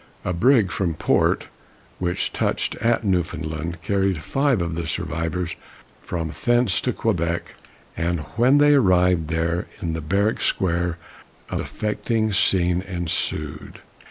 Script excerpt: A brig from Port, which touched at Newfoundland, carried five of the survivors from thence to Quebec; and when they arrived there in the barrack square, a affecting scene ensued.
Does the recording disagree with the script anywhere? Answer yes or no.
no